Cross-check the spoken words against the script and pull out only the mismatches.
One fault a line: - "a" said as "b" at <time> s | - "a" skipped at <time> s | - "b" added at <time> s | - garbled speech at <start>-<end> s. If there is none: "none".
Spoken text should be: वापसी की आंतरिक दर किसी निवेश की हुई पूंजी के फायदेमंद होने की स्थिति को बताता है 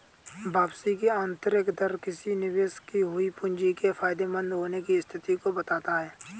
none